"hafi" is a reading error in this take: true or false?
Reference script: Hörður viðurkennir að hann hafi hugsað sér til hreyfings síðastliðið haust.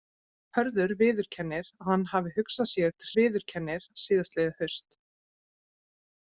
false